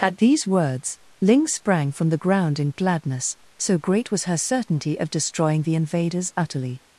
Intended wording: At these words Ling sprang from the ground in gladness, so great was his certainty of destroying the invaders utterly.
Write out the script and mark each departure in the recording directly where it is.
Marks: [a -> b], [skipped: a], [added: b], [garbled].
At these words Ling sprang from the ground in gladness, so great was [his -> her] certainty of destroying the invaders utterly.